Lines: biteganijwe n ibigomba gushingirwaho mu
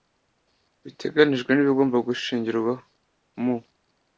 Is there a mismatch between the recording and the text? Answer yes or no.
no